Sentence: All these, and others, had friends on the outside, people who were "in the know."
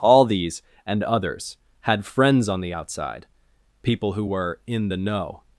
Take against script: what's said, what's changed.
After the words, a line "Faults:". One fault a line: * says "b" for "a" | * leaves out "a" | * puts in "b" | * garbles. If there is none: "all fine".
All these, and others, had friends on the outside, people who were "in the know."
Faults:
all fine